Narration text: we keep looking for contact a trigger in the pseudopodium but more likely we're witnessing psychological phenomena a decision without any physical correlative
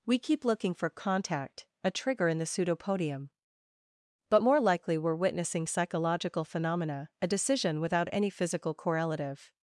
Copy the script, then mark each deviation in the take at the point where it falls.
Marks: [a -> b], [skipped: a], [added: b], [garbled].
we keep looking for contact a trigger in the pseudopodium but more likely we're witnessing psychological phenomena a decision without any physical correlative